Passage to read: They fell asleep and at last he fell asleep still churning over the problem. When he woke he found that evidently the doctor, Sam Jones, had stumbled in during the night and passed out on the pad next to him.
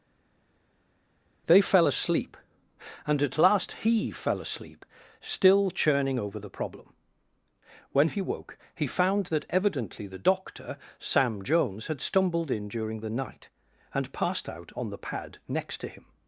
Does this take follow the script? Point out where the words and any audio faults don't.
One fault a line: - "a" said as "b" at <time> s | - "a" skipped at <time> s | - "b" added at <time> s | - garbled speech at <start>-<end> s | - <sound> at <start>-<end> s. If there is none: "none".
none